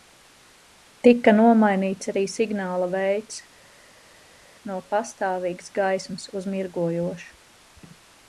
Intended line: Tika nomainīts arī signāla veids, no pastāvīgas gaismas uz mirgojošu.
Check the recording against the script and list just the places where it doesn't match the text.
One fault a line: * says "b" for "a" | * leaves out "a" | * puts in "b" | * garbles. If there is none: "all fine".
all fine